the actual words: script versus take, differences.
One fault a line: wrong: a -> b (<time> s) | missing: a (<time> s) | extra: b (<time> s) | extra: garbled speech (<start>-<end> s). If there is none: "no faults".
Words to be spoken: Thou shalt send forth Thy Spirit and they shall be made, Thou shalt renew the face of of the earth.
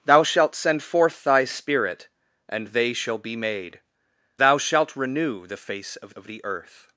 no faults